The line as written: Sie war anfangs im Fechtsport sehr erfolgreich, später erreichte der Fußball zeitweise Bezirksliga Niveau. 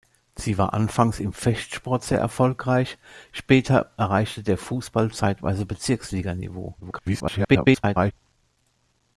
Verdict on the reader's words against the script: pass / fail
fail